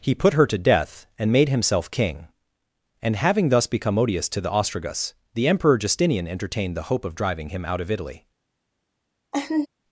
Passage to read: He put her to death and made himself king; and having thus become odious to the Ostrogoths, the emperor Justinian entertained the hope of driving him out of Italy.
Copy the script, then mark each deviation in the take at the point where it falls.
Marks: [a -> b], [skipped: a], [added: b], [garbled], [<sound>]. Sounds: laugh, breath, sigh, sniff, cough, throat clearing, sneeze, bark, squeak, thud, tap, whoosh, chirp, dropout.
He put her to death and made himself king; and having thus become odious to the Ostrogoths, the emperor Justinian entertained the hope of driving him out of Italy. [laugh]